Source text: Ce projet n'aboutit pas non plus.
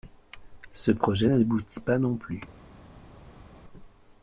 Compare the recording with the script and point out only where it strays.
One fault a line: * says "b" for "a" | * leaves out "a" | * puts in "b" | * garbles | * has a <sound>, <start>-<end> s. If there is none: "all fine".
all fine